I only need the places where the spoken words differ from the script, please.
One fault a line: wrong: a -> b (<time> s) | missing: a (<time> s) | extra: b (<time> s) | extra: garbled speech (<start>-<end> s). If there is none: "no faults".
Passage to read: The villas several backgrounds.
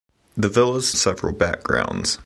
no faults